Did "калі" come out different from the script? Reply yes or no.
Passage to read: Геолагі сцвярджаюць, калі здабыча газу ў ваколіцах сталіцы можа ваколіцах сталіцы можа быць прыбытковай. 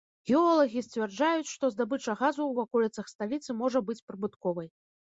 yes